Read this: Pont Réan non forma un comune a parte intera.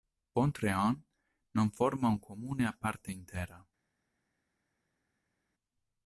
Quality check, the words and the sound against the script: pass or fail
pass